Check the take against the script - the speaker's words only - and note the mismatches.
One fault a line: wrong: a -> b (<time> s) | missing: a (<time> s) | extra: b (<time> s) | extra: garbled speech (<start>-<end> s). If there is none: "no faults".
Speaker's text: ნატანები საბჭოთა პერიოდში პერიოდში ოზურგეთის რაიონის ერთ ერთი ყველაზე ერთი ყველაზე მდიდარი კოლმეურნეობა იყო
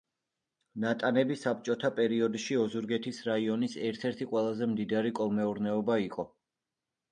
missing: პერიოდში (2.6 s)
missing: ერთი ყველაზე (4.7 s)